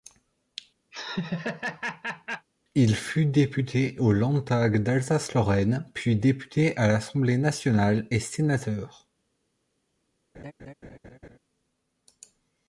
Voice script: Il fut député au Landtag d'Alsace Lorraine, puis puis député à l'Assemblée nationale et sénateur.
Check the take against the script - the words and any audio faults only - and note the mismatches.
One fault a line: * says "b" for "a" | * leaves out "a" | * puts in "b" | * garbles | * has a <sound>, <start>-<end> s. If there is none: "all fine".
* has a laugh, 0.9-2.5 s
* leaves out "puis"
* has a laugh, 10.3-11.4 s